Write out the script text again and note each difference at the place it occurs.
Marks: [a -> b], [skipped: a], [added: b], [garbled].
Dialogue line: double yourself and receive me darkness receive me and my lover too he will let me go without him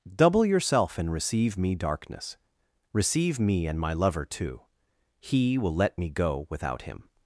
double yourself and receive me darkness receive me and my lover too he will let me go without him